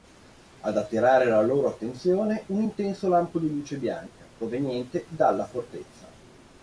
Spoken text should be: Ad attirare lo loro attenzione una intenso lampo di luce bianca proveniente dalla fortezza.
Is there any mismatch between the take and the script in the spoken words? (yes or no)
yes